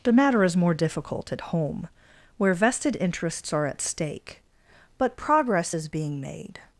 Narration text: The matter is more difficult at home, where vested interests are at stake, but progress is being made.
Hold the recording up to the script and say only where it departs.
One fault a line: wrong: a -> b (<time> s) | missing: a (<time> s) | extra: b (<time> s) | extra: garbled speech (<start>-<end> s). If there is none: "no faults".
no faults